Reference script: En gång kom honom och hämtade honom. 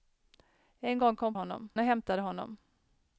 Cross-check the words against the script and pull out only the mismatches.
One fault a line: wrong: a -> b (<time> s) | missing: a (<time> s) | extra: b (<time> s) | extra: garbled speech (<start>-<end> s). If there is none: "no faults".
no faults